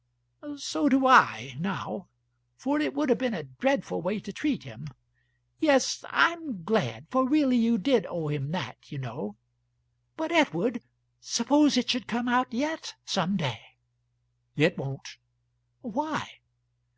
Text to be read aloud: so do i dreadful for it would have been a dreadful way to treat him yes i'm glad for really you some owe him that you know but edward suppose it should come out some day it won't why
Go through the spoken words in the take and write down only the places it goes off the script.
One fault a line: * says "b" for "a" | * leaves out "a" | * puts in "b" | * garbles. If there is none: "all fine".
* says "now" for "dreadful"
* says "did" for "some"
* puts in "yet"